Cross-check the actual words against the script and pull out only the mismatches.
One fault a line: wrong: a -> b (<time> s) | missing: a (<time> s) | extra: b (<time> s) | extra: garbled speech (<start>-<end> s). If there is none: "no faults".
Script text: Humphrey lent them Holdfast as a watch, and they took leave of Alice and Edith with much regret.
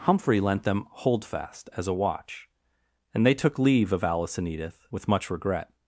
no faults